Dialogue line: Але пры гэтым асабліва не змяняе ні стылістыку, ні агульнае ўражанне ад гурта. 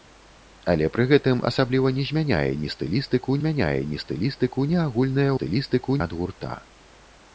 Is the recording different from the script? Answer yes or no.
yes